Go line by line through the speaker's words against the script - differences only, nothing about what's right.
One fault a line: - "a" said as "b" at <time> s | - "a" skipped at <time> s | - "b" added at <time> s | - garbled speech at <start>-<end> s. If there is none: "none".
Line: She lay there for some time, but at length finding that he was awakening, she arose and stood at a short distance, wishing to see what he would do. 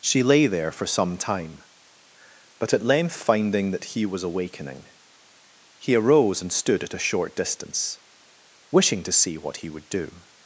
- "she" said as "he" at 5.8 s